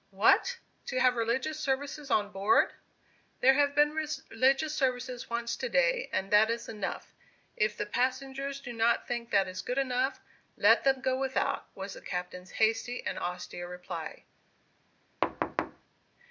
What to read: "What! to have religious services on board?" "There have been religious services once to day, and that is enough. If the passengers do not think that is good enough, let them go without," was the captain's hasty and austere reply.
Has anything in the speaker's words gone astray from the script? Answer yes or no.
no